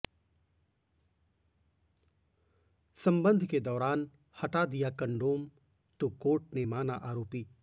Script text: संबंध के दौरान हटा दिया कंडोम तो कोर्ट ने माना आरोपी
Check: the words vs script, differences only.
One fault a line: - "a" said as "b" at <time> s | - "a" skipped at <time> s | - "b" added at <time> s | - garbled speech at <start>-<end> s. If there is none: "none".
none